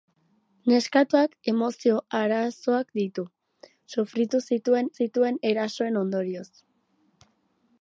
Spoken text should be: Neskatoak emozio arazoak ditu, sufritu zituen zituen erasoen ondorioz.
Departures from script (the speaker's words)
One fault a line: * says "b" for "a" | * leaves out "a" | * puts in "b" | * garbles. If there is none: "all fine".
all fine